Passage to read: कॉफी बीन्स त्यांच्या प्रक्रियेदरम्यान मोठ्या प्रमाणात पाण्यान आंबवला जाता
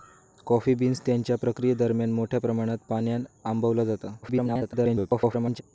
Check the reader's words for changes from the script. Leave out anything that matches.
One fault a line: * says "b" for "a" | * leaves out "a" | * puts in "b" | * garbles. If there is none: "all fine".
* garbles